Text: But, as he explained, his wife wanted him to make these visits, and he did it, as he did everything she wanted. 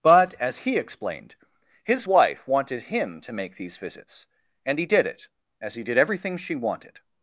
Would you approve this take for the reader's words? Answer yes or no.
yes